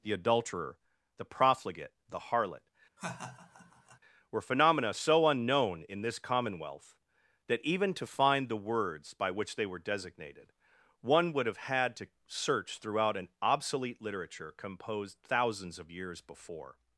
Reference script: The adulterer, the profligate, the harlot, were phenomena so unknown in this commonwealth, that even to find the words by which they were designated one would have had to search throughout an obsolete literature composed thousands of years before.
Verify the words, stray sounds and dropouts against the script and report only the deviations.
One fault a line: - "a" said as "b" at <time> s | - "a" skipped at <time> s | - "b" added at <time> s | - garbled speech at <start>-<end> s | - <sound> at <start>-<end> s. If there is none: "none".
- laugh at 3.0-4.0 s